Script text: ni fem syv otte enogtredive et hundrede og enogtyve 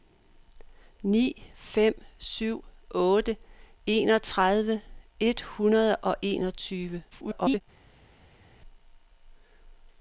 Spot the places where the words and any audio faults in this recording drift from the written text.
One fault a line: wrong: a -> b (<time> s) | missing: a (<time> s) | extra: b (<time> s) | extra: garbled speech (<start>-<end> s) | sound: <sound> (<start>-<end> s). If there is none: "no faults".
extra: garbled speech (7.1-7.6 s)